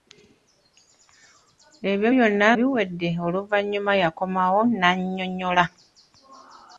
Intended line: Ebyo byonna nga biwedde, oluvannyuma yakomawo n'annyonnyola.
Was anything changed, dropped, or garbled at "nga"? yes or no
yes